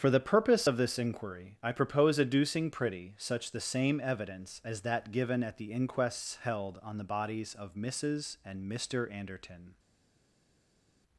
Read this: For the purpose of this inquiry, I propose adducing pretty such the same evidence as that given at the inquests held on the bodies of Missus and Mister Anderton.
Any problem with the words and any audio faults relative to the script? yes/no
no